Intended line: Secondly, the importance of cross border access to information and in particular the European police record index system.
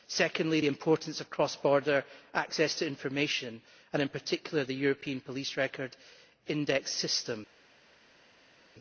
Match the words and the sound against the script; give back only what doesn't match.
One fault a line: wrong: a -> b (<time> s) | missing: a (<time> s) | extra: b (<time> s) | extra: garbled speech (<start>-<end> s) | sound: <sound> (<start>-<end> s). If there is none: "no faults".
no faults